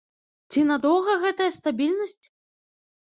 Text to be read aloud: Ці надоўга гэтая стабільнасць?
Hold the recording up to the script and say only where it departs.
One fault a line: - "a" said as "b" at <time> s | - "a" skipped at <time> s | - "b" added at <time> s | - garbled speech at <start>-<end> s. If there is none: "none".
none